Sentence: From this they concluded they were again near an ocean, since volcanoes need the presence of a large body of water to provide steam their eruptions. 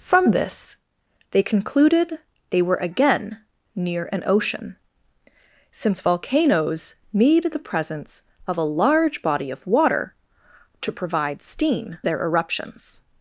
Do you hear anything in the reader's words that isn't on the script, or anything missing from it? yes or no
no